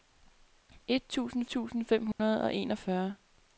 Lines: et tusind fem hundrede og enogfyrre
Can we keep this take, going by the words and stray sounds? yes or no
no